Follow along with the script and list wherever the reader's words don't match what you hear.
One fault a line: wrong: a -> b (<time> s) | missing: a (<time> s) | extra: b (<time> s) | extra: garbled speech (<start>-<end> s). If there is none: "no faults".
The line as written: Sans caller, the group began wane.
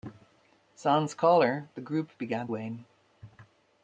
no faults